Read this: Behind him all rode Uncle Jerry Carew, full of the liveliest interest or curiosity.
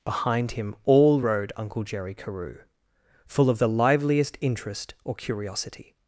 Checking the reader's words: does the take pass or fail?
pass